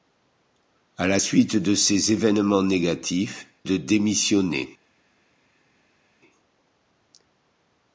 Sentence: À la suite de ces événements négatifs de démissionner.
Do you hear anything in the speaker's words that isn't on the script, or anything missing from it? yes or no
no